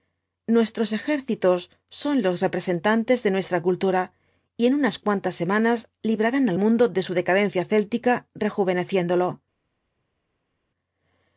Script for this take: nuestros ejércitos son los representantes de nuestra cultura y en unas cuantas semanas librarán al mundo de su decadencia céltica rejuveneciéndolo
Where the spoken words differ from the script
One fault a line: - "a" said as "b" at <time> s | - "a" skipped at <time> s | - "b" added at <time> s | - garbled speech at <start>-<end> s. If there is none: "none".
none